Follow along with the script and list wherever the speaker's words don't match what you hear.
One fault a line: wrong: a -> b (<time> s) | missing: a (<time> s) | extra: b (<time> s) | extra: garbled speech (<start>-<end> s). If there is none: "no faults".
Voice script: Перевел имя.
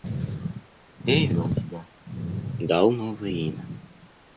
extra: тебя дал новое (1.6 s)